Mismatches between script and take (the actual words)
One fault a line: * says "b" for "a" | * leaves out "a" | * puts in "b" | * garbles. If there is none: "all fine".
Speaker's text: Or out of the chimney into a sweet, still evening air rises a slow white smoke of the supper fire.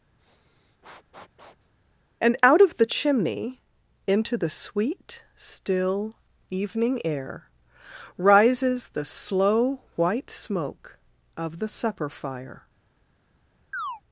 * says "And" for "Or"
* says "the" for "a"
* says "the" for "a"